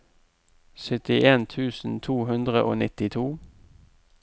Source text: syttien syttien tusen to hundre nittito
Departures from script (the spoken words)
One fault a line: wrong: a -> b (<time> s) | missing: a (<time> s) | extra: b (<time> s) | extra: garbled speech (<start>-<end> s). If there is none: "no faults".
missing: syttien (1.4 s)
extra: og (2.6 s)